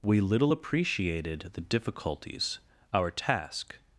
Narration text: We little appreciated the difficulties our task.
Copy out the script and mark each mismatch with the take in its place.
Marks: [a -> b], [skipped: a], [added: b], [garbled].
We little appreciated the difficulties our task.